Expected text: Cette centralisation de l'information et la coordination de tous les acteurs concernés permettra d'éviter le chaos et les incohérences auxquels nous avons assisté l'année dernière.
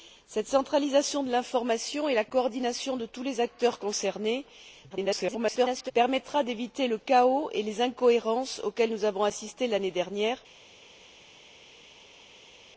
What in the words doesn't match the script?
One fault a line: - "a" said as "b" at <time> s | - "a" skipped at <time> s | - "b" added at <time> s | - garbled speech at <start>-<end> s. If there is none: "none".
- garbled speech at 4.9-5.9 s